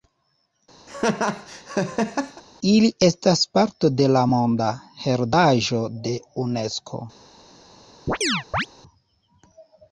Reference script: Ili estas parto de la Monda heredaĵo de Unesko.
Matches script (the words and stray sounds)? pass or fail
fail